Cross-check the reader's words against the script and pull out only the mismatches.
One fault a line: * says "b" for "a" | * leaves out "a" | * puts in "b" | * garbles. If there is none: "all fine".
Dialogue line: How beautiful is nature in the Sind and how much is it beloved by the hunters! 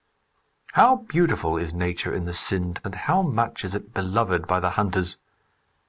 all fine